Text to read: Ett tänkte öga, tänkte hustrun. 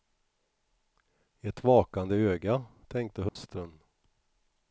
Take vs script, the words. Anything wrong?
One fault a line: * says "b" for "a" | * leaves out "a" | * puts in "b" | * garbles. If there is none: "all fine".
* says "vakande" for "tänkte"